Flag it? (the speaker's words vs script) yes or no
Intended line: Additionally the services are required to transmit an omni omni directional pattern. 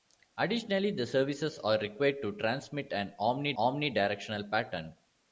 no